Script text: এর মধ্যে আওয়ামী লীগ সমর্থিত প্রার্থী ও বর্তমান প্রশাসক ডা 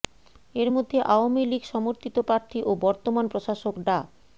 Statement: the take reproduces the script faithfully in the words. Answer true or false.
true